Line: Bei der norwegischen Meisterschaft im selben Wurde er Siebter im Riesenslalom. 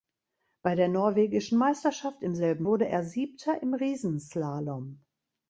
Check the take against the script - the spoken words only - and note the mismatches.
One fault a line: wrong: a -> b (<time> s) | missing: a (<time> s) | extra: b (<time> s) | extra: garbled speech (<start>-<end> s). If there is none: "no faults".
no faults